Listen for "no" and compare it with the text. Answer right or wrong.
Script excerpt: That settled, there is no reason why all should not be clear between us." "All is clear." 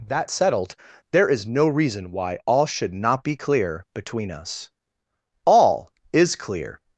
right